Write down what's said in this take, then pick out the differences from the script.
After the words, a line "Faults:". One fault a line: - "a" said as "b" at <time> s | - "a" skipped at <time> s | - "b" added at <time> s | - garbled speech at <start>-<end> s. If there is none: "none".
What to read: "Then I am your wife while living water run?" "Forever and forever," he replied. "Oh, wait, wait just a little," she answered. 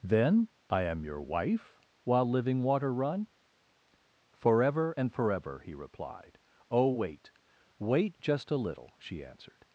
"Then I am your wife while living water run?" "Forever and forever," he replied. "Oh, wait, wait just a little," she answered.
Faults:
none